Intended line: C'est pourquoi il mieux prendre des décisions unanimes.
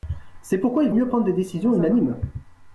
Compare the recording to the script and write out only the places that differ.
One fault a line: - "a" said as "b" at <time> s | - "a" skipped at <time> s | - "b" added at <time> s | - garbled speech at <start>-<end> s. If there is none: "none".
none